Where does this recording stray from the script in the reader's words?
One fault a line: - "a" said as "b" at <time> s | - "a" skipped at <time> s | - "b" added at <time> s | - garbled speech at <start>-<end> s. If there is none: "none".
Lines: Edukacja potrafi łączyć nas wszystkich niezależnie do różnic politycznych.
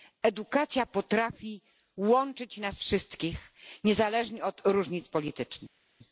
- "do" said as "od" at 4.4 s